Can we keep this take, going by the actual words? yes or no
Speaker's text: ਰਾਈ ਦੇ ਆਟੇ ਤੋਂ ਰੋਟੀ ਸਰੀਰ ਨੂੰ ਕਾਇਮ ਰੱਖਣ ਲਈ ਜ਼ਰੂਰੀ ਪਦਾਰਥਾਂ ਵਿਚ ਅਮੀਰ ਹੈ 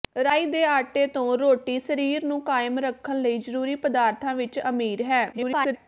no